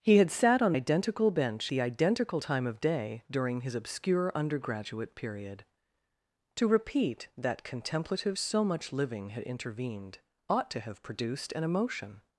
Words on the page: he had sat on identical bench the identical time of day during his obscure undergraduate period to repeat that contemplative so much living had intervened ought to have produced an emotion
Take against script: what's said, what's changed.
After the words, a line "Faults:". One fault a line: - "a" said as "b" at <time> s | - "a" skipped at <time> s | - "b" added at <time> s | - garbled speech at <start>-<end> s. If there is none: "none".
he had sat on identical bench the identical time of day during his obscure undergraduate period to repeat that contemplative so much living had intervened ought to have produced an emotion
Faults:
none